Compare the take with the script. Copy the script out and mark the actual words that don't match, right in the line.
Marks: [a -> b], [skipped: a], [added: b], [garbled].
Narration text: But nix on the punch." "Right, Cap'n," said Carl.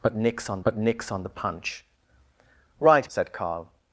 But nix on [added: but nix on] the punch." "Right, [skipped: Cap'n,"] said Carl.